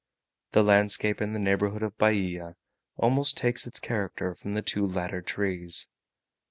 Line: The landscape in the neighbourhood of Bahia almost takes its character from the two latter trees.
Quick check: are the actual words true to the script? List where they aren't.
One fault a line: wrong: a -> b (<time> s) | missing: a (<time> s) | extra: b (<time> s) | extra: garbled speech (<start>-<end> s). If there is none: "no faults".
no faults